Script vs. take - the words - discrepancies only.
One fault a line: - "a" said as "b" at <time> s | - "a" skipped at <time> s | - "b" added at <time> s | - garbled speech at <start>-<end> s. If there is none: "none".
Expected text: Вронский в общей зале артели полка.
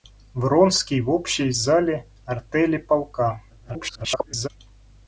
- garbled speech at 3.5-4.5 s